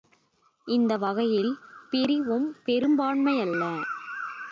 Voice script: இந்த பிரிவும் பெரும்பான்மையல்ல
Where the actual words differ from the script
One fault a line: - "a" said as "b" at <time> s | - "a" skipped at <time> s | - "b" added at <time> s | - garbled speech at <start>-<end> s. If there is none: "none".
- "வகையில்" added at 1.0 s